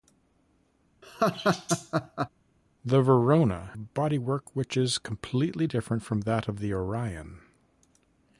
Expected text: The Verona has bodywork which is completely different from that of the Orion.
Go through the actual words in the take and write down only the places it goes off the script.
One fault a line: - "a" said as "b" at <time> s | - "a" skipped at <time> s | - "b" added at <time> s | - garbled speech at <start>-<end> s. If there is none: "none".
- "has" skipped at 3.7 s